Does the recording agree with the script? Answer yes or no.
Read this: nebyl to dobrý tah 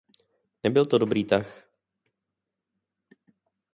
yes